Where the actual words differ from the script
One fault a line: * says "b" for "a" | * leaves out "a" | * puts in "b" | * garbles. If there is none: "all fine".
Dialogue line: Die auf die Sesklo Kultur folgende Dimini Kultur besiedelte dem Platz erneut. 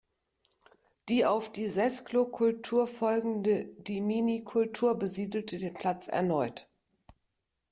* says "den" for "dem"